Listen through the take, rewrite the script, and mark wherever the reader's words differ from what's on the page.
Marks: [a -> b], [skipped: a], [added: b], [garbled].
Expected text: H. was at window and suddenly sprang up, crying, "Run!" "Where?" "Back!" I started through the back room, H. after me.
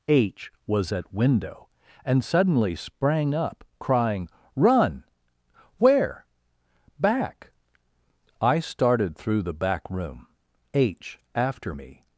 H. was at window and suddenly sprang up, crying, "Run!" "Where?" "Back!" I started through the back room, H. after me.